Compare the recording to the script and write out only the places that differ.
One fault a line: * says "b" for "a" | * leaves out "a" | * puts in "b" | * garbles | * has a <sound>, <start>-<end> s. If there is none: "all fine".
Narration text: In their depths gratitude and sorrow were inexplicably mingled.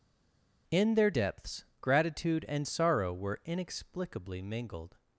all fine